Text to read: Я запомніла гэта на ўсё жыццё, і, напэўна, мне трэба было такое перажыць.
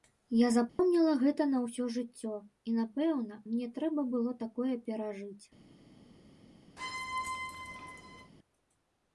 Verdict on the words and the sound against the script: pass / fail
fail